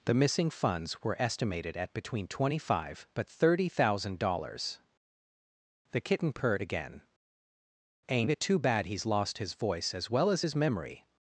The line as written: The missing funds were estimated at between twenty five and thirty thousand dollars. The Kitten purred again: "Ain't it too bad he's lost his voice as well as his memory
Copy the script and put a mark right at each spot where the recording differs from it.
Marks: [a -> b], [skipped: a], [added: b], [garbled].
The missing funds were estimated at between twenty five [and -> but] thirty thousand dollars. The Kitten purred again: "Ain't it too bad he's lost his voice as well as his memory